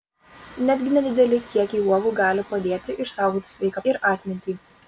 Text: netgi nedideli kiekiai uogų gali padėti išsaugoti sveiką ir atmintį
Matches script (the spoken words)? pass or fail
pass